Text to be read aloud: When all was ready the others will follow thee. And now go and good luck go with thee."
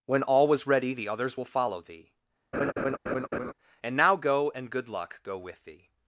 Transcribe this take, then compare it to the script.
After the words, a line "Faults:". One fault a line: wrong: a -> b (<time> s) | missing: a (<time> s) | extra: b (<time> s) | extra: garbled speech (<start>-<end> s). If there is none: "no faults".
When all was ready the others will follow thee. And now go and good luck go with thee."
Faults:
no faults